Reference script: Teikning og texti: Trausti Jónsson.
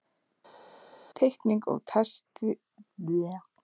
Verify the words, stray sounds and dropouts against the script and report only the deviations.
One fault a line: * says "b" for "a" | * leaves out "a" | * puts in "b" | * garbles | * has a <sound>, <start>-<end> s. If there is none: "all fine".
all fine